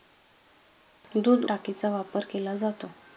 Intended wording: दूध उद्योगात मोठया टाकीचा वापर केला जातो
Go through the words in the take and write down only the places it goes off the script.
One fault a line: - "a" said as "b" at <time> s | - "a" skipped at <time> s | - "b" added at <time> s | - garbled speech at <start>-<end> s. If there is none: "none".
- "उद्योगात मोठया" skipped at 1.4 s